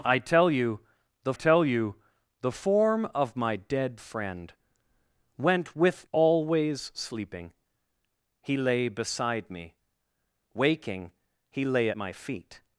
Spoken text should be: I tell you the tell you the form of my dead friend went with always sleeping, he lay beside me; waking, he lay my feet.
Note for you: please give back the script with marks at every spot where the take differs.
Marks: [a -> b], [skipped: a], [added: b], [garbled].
I tell you the tell you the form of my dead friend went with always sleeping, he lay beside me; waking, he lay my feet.